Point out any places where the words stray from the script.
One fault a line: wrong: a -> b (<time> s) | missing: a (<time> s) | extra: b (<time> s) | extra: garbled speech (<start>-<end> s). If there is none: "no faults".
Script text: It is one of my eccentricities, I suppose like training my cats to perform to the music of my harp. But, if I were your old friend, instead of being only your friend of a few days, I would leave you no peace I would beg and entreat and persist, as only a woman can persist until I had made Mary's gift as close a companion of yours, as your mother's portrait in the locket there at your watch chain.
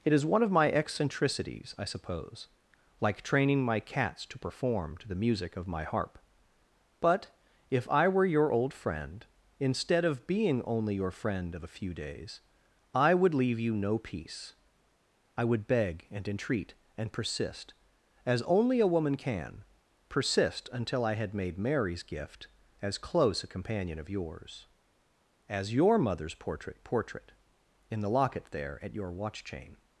extra: portrait (26.8 s)